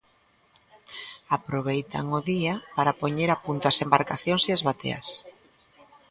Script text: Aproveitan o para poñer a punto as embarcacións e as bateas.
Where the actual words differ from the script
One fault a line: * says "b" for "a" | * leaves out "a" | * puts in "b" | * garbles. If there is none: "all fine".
* puts in "día"